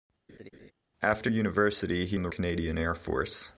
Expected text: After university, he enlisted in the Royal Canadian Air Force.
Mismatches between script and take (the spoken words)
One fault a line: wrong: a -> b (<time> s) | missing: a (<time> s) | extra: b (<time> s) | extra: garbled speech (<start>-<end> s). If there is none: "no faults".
missing: enlisted (2.2 s)
missing: Royal (2.3 s)